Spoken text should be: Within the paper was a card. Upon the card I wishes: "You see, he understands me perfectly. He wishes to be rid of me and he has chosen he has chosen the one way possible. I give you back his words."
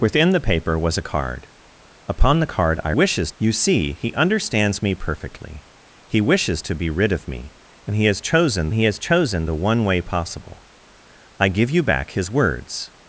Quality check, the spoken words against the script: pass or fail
pass